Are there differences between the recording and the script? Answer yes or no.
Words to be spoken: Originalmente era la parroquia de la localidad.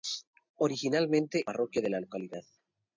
yes